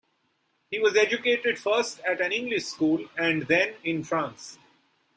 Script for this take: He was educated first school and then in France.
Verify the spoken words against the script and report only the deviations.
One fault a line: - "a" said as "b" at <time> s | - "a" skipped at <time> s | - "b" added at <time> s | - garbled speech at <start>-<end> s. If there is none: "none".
- "at an English" added at 2.1 s